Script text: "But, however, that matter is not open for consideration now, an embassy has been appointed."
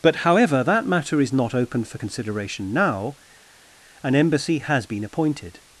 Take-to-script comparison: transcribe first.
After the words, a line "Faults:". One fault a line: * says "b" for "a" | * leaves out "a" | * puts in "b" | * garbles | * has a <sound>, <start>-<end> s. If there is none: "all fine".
"But, however, that matter is not open for consideration now, an embassy has been appointed."
Faults:
all fine